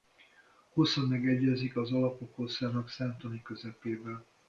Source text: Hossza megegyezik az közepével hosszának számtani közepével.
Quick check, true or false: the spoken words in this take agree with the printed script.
false